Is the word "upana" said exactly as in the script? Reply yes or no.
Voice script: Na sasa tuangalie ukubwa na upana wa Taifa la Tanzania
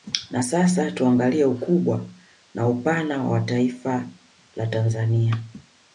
yes